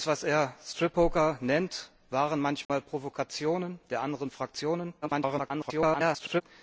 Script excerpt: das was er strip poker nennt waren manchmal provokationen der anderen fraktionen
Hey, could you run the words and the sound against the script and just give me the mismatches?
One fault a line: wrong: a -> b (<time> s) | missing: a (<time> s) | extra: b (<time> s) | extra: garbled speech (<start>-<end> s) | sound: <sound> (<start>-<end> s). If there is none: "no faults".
sound: dropout (2.6-2.7 s)
extra: garbled speech (5.0-6.4 s)